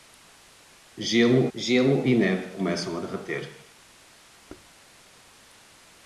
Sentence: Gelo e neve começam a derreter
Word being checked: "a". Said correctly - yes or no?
yes